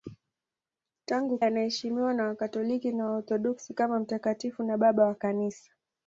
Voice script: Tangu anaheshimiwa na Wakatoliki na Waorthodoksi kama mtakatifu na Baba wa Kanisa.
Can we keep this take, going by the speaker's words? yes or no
yes